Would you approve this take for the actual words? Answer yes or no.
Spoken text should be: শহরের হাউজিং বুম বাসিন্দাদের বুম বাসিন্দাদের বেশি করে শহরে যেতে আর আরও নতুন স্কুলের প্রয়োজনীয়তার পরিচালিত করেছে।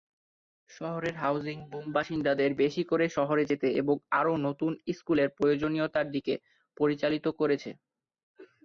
no